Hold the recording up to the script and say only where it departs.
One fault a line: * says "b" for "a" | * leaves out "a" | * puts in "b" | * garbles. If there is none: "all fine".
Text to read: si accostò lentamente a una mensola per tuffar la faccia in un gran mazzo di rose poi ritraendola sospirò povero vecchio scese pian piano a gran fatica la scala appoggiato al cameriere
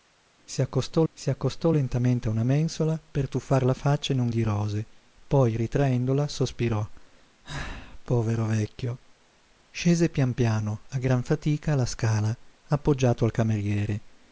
* puts in "si accostò"
* leaves out "gran mazzo"